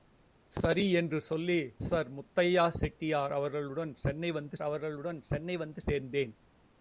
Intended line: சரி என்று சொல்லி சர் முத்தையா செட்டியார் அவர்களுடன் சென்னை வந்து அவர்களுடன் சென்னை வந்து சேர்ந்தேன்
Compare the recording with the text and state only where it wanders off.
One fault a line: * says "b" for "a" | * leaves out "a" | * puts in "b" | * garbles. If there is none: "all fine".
all fine